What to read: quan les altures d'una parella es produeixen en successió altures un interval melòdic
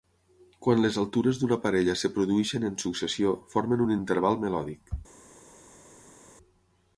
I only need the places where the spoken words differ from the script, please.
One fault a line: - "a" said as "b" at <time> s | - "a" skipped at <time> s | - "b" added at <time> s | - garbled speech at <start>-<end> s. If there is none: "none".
- "altures" said as "formen" at 3.5 s